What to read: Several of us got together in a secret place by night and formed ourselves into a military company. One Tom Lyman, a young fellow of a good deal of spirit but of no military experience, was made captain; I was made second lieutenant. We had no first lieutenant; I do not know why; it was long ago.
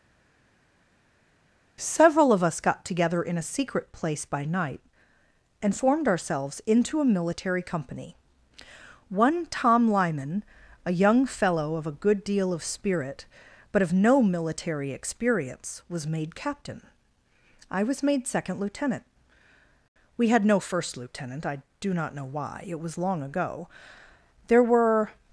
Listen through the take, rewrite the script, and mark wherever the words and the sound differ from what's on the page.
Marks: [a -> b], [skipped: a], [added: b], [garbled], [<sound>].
Several of us got together in a secret place by night and formed ourselves into a military company. One Tom Lyman, a young fellow of a good deal of spirit but of no military experience, was made captain; I was made second lieutenant. We had no first lieutenant; I do not know why; it was long ago. [added: There were]